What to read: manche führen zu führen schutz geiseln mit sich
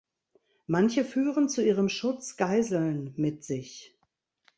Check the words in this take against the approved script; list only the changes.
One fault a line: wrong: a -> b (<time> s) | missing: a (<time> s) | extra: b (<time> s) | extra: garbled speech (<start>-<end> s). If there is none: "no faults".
wrong: führen -> ihrem (1.6 s)